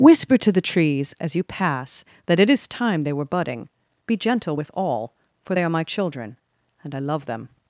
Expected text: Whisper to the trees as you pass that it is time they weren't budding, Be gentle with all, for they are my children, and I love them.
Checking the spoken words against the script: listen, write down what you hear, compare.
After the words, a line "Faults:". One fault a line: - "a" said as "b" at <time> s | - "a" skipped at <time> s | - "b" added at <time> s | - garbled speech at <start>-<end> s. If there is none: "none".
Whisper to the trees as you pass that it is time they were budding, Be gentle with all, for they are my children, and I love them.
Faults:
- "weren't" said as "were" at 3.1 s